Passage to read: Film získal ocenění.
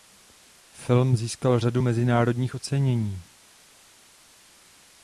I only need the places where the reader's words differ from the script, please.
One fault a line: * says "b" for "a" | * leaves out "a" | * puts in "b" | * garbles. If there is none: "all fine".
* puts in "řadu mezinárodních"